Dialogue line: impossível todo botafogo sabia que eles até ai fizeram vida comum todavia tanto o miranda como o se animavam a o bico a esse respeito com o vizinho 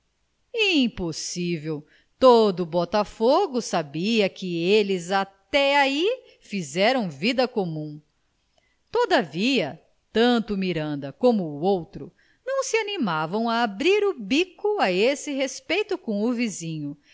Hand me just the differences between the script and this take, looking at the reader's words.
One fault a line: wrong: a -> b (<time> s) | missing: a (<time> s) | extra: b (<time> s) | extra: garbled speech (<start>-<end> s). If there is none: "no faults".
extra: outro não (11.6 s)
extra: abrir (13.6 s)